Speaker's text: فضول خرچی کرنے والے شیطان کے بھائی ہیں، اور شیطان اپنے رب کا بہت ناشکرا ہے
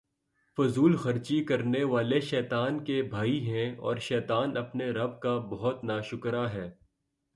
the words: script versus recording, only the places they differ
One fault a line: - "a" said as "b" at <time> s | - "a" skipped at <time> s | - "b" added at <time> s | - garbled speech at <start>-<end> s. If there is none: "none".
none